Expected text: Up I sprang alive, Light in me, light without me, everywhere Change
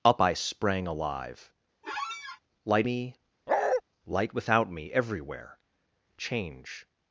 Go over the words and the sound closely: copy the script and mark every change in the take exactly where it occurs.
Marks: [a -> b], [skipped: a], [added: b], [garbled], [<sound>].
Up I sprang alive, [squeak] Light [skipped: in] me, [bark] light without me, everywhere Change